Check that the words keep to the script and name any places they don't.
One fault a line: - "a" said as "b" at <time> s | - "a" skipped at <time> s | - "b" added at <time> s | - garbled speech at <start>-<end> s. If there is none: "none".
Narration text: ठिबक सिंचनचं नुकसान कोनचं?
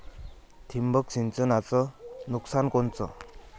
none